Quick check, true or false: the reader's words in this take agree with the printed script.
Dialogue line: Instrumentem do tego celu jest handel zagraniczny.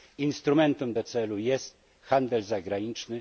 false